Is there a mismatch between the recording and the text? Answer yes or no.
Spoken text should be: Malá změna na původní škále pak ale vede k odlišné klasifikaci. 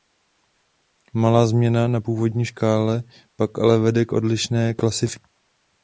no